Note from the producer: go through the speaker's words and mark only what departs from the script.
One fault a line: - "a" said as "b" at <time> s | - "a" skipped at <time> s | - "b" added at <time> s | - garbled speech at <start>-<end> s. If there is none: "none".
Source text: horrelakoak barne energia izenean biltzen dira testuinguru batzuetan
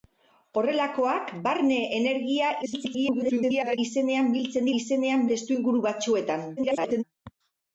- garbled speech at 2.6-3.8 s
- "dira" said as "izenean" at 4.8 s
- garbled speech at 6.6-7.0 s